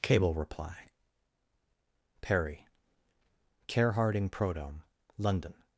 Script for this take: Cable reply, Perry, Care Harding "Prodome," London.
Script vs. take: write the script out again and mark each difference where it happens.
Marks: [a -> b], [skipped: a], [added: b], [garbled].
Cable reply, Perry, Care Harding "Prodome," London.